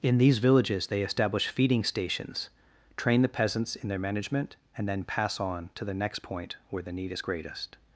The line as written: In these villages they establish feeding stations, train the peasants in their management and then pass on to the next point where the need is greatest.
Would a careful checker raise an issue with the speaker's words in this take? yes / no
no